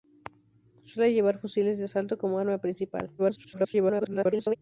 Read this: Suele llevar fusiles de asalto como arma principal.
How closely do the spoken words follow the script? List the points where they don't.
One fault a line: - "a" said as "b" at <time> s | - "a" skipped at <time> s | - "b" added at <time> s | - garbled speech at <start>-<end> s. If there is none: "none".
- garbled speech at 3.2-4.6 s